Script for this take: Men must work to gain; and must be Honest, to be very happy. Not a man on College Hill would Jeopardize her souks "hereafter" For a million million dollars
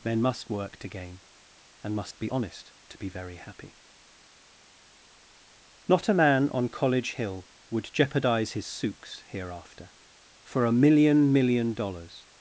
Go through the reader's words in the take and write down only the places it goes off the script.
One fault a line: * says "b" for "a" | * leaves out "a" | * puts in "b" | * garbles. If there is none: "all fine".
* says "his" for "her"